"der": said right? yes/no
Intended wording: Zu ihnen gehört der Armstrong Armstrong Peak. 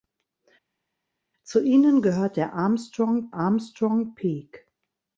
yes